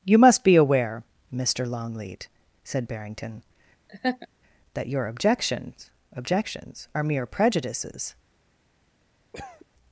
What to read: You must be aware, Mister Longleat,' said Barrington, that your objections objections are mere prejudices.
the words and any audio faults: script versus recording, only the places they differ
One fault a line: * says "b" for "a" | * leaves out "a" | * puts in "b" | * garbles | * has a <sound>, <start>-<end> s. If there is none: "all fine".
* has a laugh, 3.9-4.3 s
* has a cough, 9.3-9.7 s